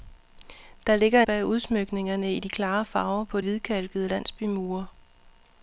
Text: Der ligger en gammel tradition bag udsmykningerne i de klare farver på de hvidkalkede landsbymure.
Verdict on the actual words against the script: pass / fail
fail